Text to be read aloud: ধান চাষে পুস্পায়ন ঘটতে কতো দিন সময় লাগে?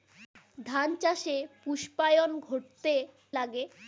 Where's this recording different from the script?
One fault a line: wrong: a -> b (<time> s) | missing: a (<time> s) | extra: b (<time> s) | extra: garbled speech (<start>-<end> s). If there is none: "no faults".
missing: কতো দিন সময় (2.9 s)